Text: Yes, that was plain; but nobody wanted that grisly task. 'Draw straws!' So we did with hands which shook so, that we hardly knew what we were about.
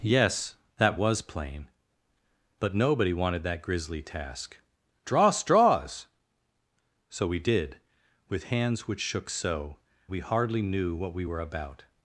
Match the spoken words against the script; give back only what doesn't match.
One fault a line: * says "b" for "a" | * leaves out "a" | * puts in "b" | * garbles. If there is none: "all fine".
* leaves out "that"